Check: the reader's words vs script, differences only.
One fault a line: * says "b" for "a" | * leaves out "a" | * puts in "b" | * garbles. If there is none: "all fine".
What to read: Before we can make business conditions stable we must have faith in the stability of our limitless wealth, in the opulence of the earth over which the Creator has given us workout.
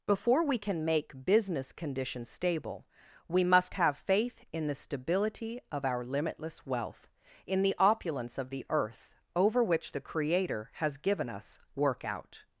all fine